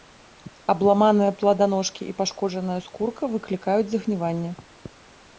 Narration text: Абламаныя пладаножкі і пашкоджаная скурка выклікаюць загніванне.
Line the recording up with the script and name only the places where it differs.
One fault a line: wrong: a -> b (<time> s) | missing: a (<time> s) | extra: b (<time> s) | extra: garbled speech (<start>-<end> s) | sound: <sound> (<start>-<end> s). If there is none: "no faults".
no faults